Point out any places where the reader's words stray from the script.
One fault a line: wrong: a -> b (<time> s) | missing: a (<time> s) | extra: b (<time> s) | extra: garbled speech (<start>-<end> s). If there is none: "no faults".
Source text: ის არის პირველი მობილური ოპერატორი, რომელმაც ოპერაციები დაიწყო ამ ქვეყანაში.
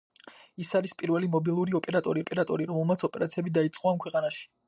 extra: ოპერატორი (2.2 s)